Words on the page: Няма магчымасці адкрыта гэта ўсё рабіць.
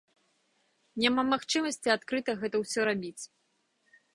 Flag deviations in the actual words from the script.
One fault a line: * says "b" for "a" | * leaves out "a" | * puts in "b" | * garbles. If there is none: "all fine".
all fine